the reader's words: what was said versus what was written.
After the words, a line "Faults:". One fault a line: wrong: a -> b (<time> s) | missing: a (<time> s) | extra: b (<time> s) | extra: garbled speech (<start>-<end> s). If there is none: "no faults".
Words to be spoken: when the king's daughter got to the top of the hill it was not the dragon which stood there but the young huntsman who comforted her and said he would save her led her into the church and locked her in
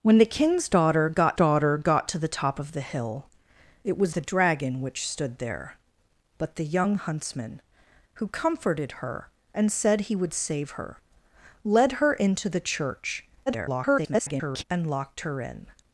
when the king's daughter got daughter got to the top of the hill it was the dragon which stood there but the young huntsman who comforted her and said he would save her led her into the church [garbled] and locked her in
Faults:
extra: daughter got (1.3 s)
missing: not (4.1 s)
extra: garbled speech (13.5-14.6 s)